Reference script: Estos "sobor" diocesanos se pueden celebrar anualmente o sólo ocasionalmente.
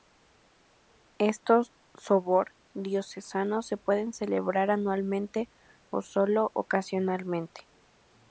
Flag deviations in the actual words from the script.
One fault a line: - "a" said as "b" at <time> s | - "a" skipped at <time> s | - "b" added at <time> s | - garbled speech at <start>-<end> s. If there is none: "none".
none